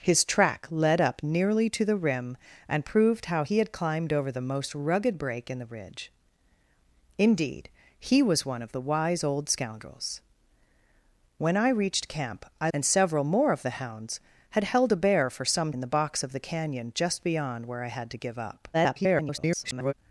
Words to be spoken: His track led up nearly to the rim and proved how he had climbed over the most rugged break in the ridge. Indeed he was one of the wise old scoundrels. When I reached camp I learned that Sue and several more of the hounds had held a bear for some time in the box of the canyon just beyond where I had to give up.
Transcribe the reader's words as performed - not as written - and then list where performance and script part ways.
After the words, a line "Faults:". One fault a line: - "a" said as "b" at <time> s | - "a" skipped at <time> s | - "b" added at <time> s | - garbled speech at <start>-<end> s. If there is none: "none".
His track led up nearly to the rim and proved how he had climbed over the most rugged break in the ridge. Indeed he was one of the wise old scoundrels. When I reached camp I and several more of the hounds had held a bear for some in the box of the canyon just beyond where I had to give up. [garbled]
Faults:
- "learned that Sue" skipped at 12.7 s
- "time" skipped at 15.7 s
- garbled speech at 18.7-19.9 s